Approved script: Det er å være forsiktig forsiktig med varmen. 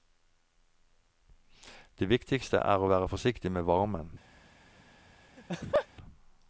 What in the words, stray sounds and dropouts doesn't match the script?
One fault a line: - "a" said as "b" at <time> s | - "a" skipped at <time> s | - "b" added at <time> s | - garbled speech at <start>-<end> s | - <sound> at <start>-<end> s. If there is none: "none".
- "viktigste" added at 2.1 s
- "forsiktig" skipped at 3.5 s
- laugh at 5.4-5.9 s